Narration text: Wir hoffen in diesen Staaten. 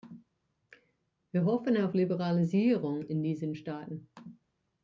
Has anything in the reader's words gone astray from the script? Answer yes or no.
yes